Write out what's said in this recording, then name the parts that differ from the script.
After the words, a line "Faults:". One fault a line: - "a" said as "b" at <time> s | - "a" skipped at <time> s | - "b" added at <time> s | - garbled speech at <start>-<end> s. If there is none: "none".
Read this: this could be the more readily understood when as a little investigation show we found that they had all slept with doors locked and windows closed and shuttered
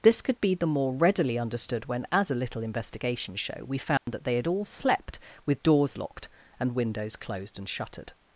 this could be the more readily understood when as a little investigation show we found that they had all slept with doors locked and windows closed and shuttered
Faults:
none